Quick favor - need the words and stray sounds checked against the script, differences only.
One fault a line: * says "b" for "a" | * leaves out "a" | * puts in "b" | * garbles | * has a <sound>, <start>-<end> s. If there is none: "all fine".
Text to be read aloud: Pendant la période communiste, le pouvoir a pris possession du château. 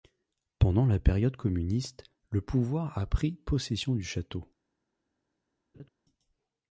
* has a laugh, 5.7-5.9 s